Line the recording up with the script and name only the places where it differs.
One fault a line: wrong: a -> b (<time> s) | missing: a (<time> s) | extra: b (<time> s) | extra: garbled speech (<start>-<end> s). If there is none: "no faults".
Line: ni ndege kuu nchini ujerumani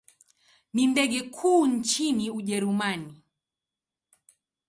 no faults